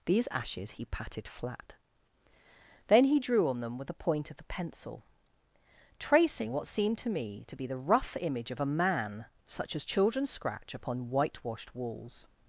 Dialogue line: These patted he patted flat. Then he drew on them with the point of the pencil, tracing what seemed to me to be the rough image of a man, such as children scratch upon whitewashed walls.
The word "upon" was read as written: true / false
true